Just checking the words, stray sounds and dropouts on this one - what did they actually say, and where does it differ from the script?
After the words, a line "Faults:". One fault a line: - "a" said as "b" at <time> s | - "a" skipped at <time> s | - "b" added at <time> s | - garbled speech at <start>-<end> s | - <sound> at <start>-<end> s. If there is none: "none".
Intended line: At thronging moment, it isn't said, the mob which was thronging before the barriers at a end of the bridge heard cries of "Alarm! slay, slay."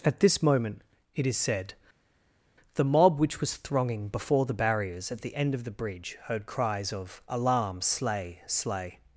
At this moment, it is said, the mob which was thronging before the barriers at the end of the bridge heard cries of "Alarm! slay, slay."
Faults:
- "thronging" said as "this" at 0.2 s
- "isn't" said as "is" at 1.3 s
- "a" said as "the" at 5.2 s